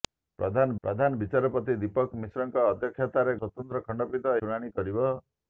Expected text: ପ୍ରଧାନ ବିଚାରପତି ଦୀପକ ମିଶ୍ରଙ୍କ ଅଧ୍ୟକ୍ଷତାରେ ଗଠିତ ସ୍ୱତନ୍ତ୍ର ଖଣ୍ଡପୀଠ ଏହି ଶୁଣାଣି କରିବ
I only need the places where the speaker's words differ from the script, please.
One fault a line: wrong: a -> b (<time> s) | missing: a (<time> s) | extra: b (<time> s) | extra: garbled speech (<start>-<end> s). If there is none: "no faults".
extra: ପ୍ରଧାନ (0.8 s)
missing: ଗଠିତ (3.4 s)
missing: ଏହି (4.4 s)